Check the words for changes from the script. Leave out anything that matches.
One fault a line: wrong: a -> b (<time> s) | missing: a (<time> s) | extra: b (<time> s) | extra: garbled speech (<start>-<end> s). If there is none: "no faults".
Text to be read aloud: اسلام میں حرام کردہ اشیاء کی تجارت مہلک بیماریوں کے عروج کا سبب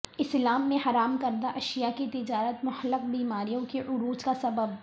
no faults